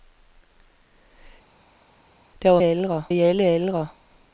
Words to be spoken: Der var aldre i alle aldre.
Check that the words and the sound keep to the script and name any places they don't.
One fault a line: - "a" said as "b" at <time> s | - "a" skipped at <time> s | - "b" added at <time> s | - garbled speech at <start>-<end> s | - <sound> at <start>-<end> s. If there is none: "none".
none